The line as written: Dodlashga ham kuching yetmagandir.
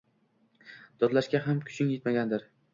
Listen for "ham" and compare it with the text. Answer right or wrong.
right